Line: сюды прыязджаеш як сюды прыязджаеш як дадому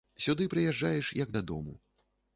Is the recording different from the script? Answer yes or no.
yes